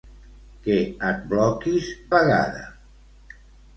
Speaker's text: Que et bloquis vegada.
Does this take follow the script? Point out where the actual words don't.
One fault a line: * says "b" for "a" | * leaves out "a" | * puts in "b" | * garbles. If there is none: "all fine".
all fine